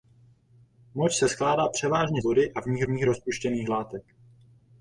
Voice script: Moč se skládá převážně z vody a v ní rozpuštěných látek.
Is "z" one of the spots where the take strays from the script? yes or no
yes